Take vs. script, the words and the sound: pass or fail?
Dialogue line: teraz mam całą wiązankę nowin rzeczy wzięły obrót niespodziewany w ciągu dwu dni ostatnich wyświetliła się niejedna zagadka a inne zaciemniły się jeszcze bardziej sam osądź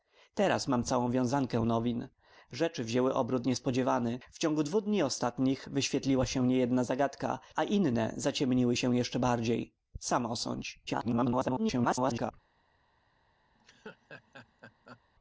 fail